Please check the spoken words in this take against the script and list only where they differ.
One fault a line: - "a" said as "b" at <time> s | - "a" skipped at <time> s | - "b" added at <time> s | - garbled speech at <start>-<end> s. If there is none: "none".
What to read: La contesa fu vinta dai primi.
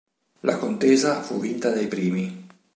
none